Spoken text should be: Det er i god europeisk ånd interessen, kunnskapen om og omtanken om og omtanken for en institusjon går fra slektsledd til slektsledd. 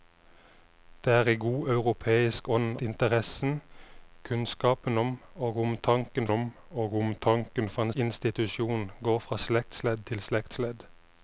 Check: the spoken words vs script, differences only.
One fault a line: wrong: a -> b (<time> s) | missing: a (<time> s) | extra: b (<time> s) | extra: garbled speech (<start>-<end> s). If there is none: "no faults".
no faults